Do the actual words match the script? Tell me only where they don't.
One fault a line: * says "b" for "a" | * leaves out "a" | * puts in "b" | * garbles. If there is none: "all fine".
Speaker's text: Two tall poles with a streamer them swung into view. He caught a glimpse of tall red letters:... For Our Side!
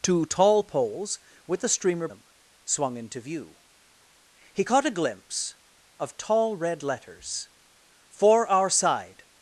all fine